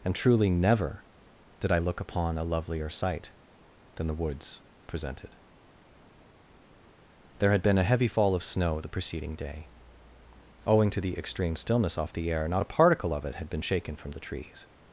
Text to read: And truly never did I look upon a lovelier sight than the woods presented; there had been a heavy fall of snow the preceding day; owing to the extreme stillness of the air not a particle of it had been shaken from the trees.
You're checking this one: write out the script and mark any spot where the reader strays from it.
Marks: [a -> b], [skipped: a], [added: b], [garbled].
And truly never did I look upon a lovelier sight than the woods presented; there had been a heavy fall of snow the preceding day; owing to the extreme stillness [of -> off] the air not a particle of it had been shaken from the trees.